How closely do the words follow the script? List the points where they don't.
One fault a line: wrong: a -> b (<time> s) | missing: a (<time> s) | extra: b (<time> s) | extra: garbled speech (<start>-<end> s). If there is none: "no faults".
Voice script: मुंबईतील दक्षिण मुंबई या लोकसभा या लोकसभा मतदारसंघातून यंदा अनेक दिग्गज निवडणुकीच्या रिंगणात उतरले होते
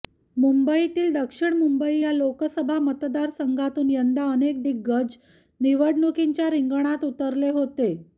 missing: या लोकसभा (2.8 s)